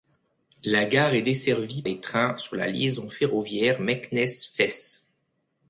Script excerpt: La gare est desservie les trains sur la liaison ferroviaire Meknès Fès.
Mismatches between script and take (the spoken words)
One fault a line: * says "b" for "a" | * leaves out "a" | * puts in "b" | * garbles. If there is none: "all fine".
all fine